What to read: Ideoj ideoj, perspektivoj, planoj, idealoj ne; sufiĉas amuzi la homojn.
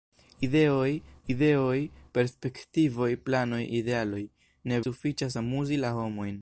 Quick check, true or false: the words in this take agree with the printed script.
true